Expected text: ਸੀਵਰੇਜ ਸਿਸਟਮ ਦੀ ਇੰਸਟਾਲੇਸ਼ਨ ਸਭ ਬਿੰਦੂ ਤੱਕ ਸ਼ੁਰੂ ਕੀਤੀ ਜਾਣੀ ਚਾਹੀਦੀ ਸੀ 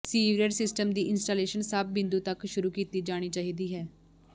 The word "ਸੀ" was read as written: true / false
false